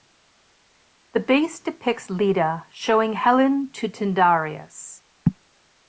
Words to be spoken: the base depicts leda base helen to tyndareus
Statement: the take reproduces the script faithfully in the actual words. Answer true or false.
false